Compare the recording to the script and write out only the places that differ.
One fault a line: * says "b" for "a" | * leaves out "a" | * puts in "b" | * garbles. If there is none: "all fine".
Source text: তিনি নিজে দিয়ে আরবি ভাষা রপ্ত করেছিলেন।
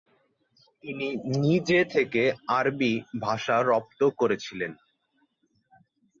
* says "থেকে" for "দিয়ে"